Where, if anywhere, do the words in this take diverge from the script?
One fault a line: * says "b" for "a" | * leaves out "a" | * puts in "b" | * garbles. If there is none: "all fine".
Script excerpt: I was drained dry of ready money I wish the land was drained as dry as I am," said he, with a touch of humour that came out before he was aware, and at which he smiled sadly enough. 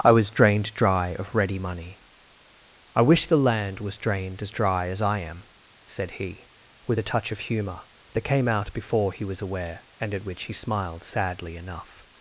all fine